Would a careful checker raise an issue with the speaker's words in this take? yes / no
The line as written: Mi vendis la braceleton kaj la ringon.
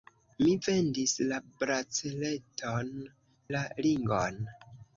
yes